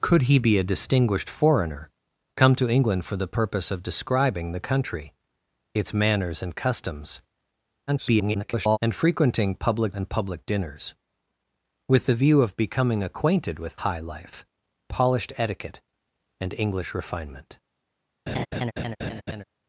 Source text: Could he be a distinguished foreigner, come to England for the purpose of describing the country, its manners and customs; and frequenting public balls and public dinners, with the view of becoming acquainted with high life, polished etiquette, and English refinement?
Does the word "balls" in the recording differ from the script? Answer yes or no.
yes